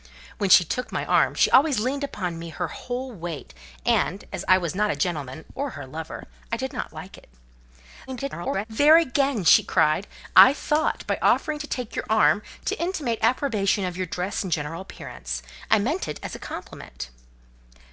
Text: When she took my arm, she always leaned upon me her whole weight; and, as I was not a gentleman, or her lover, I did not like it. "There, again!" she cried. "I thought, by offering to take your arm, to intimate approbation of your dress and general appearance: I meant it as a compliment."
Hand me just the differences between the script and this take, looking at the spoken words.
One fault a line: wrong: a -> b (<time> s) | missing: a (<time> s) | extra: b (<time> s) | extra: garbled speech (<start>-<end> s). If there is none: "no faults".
extra: garbled speech (8.1-8.7 s)